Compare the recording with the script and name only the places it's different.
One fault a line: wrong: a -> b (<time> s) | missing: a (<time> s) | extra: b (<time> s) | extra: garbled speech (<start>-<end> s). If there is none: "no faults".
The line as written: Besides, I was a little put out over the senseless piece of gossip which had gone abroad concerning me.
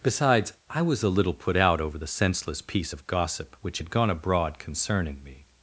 no faults